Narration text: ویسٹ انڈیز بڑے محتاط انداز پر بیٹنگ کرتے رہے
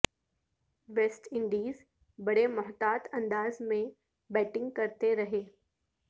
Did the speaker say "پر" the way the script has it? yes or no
no